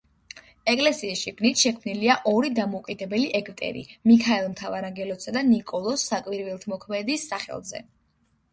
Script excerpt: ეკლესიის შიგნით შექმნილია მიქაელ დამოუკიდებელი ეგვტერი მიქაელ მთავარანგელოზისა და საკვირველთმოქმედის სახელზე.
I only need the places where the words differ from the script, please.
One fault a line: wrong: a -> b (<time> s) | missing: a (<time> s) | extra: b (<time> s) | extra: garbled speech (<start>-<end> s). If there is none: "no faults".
wrong: მიქაელ -> ორი (2.3 s)
extra: ნიკოლოზ (5.5 s)